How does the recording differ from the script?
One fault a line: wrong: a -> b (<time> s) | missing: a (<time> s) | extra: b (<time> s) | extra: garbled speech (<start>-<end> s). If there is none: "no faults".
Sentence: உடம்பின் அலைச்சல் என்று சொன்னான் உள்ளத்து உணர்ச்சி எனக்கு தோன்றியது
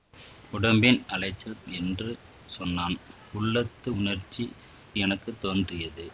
no faults